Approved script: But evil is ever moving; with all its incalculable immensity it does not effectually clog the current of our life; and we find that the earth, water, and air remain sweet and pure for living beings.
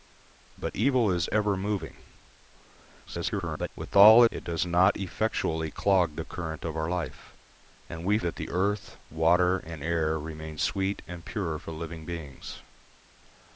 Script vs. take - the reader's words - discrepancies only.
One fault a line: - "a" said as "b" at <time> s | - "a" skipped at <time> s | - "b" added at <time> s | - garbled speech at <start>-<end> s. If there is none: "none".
- garbled speech at 3.0-3.7 s
- "its incalculable immensity" skipped at 4.2 s
- "find" skipped at 8.2 s